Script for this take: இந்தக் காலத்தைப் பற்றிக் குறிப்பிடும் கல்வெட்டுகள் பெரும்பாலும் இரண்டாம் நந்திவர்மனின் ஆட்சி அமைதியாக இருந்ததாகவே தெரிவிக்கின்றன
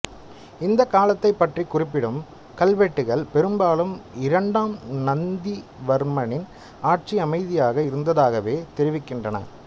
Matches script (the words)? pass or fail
pass